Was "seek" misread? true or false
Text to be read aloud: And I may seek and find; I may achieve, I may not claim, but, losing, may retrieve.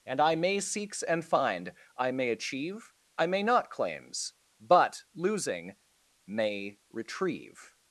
true